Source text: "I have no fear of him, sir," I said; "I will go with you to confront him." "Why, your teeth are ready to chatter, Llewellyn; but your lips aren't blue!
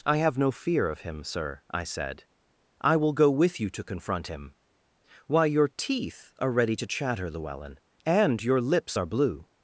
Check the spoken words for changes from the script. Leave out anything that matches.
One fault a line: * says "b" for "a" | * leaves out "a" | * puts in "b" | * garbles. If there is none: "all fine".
* says "and" for "but"
* says "are" for "aren't"